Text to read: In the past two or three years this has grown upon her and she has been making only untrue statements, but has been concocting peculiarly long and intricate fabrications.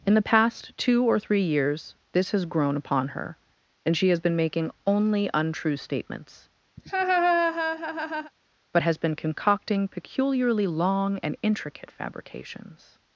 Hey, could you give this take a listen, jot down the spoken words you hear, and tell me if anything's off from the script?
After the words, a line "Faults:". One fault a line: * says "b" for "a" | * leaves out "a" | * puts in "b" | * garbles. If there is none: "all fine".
In the past two or three years this has grown upon her and she has been making only untrue statements, but has been concocting peculiarly long and intricate fabrications.
Faults:
all fine